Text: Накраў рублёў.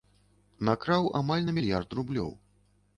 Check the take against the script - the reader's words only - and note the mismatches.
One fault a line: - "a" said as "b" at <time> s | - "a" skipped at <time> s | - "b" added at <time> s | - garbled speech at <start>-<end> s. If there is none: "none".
- "амаль на мільярд" added at 1.2 s